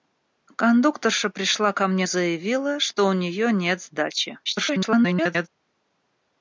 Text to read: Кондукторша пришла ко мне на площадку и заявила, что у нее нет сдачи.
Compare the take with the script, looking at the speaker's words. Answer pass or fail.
fail